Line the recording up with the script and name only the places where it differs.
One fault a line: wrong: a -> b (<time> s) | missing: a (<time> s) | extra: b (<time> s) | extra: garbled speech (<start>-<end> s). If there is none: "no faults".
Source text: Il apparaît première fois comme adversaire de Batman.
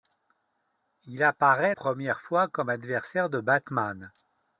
no faults